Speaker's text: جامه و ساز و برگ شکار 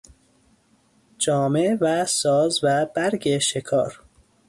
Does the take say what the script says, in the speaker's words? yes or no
yes